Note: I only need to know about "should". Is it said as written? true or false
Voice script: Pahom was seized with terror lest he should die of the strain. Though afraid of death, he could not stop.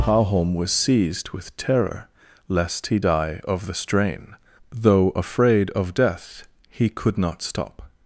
false